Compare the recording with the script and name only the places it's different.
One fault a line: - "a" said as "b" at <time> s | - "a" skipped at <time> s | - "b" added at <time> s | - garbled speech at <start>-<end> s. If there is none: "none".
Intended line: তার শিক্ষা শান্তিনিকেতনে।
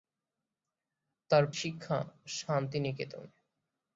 none